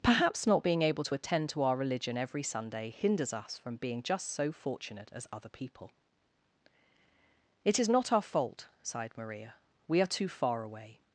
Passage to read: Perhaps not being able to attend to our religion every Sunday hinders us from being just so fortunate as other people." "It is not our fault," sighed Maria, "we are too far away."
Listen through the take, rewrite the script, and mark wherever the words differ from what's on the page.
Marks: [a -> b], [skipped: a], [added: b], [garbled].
Perhaps not being able to attend to our religion every Sunday hinders us from being just so fortunate as other people." "It is not our fault," sighed Maria, "we are too far away."